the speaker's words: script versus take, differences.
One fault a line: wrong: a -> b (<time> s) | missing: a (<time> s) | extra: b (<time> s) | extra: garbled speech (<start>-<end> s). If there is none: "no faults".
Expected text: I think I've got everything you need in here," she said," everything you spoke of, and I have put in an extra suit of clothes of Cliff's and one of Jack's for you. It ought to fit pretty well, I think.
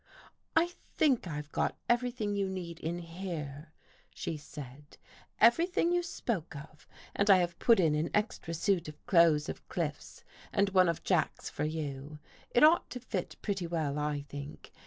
no faults